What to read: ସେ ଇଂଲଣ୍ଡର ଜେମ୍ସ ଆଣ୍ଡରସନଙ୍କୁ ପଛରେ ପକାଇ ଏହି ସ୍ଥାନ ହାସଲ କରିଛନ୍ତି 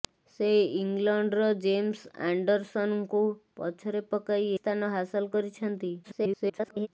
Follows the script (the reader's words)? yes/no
no